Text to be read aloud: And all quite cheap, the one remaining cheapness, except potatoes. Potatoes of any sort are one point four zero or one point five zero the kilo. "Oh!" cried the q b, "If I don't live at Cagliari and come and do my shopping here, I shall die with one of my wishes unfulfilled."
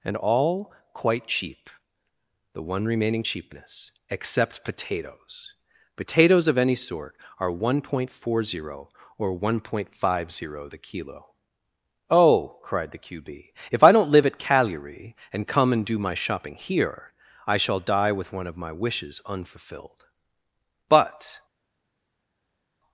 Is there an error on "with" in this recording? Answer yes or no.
no